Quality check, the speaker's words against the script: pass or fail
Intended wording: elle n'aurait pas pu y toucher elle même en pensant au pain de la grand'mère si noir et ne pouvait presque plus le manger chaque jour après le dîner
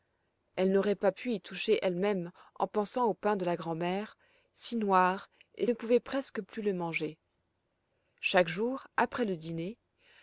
pass